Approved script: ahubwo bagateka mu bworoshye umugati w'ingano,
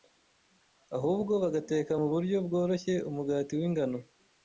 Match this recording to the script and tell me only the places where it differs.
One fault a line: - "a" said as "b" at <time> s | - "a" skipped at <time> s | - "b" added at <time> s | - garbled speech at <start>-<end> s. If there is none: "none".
- "buryo" added at 2.1 s